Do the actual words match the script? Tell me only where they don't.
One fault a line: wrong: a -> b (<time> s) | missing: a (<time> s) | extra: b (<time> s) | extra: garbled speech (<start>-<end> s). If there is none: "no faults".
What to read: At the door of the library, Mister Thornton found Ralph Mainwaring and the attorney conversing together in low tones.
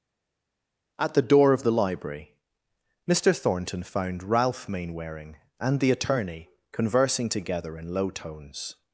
no faults